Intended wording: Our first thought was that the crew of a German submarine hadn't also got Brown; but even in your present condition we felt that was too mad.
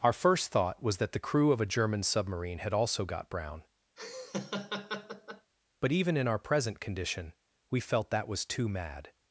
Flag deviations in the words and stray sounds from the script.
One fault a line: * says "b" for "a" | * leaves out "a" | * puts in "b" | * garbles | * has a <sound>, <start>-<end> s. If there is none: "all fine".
* says "had" for "hadn't"
* has a laugh, 4.0-5.5 s
* says "our" for "your"